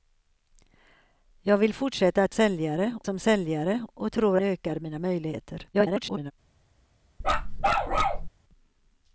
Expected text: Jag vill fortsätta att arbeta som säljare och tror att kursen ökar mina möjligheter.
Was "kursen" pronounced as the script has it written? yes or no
no